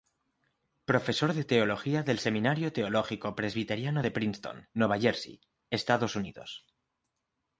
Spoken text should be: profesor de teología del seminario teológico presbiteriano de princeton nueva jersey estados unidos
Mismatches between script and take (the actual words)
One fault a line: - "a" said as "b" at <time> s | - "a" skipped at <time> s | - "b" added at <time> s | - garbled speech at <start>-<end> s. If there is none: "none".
none